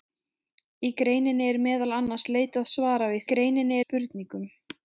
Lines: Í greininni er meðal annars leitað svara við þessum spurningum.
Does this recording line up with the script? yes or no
no